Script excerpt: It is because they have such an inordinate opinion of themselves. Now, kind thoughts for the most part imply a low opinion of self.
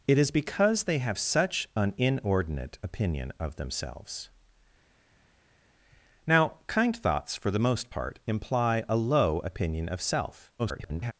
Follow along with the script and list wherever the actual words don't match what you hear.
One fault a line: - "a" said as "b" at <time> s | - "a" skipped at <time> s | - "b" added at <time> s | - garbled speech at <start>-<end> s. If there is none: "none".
- garbled speech at 10.6-11.1 s